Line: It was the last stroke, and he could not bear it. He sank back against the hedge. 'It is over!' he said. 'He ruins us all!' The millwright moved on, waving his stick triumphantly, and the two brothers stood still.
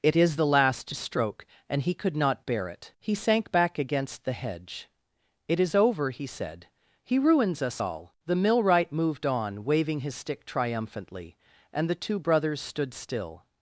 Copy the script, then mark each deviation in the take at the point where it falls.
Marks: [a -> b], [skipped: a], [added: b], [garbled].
It [was -> is] the last stroke, and he could not bear it. He sank back against the hedge. 'It is over!' he said. 'He ruins us all!' The millwright moved on, waving his stick triumphantly, and the two brothers stood still.